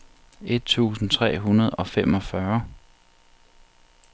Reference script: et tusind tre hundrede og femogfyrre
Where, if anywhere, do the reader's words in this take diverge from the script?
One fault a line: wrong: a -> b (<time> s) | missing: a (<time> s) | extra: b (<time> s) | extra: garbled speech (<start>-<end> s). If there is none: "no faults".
no faults